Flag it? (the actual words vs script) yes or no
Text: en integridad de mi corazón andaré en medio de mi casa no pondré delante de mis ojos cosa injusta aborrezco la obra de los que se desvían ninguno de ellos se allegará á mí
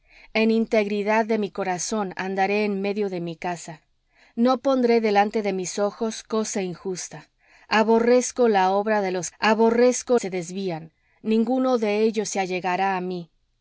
yes